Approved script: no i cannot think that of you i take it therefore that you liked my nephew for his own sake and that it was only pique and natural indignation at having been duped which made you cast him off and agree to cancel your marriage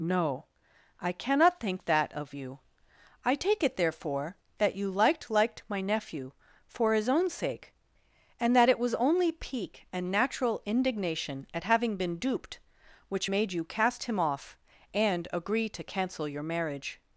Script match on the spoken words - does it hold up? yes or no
no